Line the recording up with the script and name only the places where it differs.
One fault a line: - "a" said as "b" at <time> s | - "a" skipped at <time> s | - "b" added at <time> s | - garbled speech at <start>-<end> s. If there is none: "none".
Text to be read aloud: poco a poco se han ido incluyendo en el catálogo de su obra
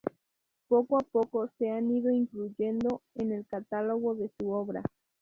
none